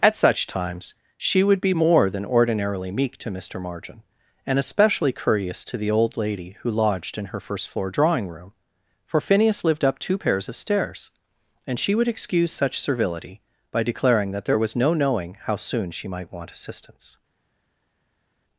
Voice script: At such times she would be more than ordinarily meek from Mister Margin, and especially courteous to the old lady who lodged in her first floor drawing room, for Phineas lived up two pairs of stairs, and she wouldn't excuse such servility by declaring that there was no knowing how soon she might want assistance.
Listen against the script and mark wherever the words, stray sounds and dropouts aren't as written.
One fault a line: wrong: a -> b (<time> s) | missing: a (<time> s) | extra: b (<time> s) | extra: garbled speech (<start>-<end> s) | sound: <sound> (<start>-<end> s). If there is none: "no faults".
wrong: from -> to (3.2 s)
wrong: wouldn't -> would (11.9 s)